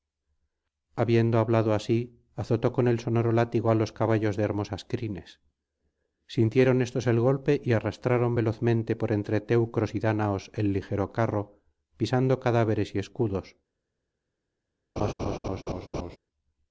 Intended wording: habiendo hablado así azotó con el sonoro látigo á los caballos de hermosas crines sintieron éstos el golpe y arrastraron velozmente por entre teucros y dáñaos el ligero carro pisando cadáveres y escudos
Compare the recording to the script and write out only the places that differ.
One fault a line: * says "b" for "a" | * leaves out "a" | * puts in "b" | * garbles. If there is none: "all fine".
all fine